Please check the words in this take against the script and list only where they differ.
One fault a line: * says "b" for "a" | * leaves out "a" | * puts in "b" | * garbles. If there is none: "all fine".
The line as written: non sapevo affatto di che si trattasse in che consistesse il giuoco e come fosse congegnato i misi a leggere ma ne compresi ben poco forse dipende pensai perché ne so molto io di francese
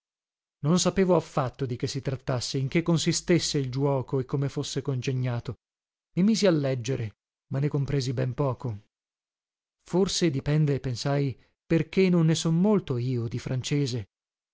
* puts in "non"